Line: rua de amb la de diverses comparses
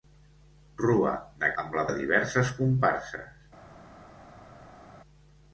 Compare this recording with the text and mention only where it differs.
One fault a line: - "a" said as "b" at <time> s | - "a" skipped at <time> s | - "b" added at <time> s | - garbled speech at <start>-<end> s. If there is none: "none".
none